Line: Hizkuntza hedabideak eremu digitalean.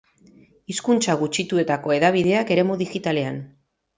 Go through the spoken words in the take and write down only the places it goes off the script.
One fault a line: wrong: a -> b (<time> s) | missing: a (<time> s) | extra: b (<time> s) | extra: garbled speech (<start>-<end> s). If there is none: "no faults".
extra: gutxituetako (1.2 s)